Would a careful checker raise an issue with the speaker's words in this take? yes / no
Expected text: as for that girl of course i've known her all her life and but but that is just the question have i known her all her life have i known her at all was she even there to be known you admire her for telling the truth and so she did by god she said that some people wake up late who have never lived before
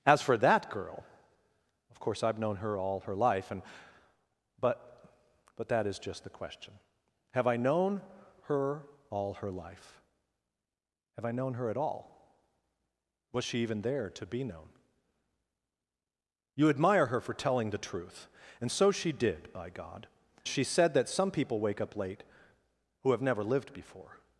no